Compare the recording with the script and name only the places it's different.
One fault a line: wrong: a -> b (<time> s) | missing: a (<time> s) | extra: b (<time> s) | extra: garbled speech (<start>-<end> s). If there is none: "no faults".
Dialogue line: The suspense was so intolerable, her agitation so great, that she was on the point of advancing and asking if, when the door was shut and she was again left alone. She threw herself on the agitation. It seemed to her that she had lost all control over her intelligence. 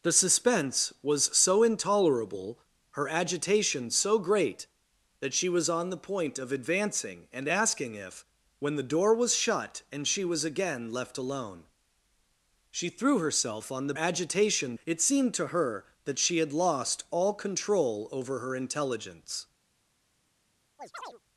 no faults